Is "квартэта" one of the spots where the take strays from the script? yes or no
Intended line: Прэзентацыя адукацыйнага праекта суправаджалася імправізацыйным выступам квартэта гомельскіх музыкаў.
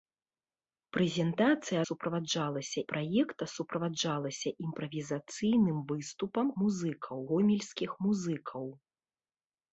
yes